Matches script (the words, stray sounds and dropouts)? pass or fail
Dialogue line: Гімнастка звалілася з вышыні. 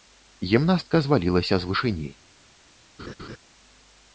fail